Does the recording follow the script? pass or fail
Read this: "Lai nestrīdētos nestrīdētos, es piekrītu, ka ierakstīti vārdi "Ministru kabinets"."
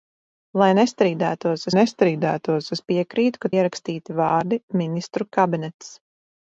pass